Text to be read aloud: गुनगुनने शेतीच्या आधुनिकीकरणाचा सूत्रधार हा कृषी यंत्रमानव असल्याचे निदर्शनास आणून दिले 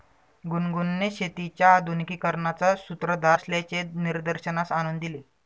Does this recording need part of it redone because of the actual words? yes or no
yes